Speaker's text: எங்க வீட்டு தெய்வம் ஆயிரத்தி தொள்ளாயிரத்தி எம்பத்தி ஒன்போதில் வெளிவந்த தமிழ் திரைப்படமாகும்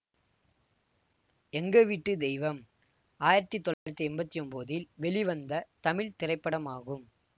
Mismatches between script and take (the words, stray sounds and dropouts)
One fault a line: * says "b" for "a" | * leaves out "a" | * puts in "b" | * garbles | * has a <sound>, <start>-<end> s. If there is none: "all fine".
* has a dropout, 3.7-3.9 s